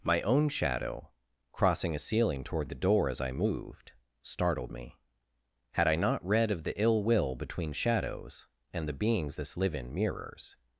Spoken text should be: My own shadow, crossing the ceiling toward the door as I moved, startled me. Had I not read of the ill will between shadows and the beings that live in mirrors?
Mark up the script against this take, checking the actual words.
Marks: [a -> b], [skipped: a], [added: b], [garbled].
My own shadow, crossing [the -> a] ceiling toward the door as I moved, startled me. Had I not read of the ill will between shadows and the beings [that -> this] live in mirrors?